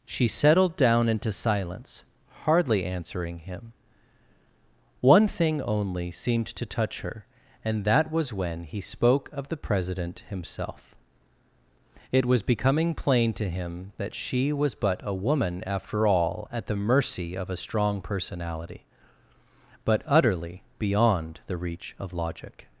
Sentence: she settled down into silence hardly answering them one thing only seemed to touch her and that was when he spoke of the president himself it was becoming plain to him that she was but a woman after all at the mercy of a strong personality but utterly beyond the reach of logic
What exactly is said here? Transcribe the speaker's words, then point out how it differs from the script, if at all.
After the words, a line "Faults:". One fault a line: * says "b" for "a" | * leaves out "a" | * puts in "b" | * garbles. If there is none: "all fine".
she settled down into silence hardly answering him one thing only seemed to touch her and that was when he spoke of the president himself it was becoming plain to him that she was but a woman after all at the mercy of a strong personality but utterly beyond the reach of logic
Faults:
* says "him" for "them"